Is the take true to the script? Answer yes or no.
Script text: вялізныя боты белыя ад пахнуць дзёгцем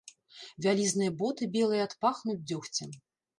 yes